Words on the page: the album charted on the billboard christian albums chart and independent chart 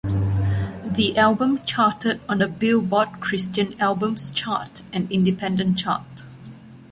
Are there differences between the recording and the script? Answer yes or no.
no